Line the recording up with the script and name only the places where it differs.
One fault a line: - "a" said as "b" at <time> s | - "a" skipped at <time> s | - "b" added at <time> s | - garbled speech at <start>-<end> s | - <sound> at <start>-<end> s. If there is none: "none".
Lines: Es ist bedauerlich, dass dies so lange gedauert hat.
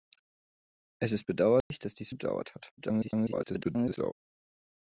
- dropout at 1.6-1.7 s
- "so lange" skipped at 2.1 s
- garbled speech at 2.8-4.1 s